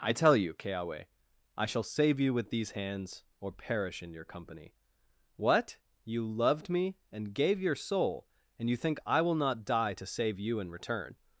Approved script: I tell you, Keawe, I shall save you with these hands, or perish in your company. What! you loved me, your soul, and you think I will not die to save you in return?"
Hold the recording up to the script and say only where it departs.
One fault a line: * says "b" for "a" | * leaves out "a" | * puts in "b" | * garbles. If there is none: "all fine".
* puts in "and gave"